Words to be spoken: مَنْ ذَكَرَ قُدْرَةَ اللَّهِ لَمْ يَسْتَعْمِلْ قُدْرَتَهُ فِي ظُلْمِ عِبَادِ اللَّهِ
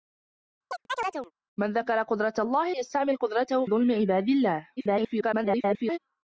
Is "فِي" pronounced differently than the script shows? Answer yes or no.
yes